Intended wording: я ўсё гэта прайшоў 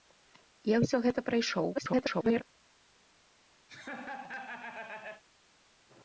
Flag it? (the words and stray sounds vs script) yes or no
yes